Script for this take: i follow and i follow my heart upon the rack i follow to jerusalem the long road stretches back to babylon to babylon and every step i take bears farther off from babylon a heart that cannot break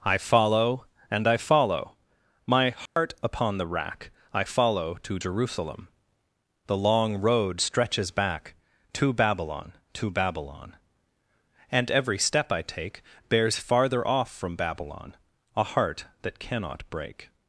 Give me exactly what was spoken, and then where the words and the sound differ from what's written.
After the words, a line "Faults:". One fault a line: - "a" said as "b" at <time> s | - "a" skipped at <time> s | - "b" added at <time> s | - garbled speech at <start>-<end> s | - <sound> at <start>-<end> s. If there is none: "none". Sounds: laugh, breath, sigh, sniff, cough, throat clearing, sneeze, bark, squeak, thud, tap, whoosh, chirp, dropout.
i follow and i follow my heart upon the rack i follow to jerusalem the long road stretches back to babylon to babylon and every step i take bears farther off from babylon a heart that cannot break
Faults:
- dropout at 2.9-3.0 s